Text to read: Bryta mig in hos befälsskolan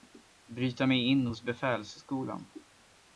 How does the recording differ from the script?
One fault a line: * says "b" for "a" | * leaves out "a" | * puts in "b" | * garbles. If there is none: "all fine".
all fine